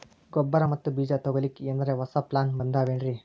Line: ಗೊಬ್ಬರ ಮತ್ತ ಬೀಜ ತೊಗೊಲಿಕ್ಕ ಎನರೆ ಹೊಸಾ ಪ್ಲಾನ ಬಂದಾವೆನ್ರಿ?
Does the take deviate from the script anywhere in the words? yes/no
no